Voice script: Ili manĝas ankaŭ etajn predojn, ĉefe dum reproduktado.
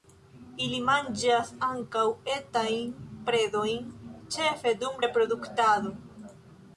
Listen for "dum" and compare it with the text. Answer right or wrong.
right